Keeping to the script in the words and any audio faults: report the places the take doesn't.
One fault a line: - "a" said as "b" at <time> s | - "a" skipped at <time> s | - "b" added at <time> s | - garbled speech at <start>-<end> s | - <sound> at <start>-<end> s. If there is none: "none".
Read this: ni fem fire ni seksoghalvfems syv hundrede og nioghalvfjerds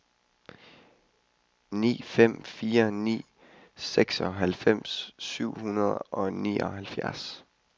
none